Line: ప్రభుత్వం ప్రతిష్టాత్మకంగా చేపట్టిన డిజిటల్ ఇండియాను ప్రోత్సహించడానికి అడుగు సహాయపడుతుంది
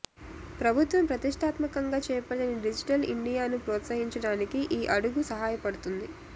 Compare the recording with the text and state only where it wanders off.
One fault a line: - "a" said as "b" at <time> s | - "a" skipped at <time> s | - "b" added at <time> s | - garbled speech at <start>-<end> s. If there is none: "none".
- "ఈ" added at 4.7 s